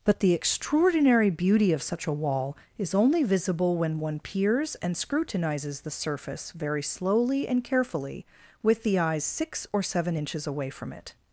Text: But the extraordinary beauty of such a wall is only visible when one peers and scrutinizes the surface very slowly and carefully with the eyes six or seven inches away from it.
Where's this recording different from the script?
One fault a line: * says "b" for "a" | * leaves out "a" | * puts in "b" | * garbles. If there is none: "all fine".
all fine